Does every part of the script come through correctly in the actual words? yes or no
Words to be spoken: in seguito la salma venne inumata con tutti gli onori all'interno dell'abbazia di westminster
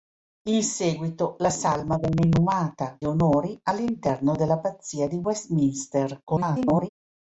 no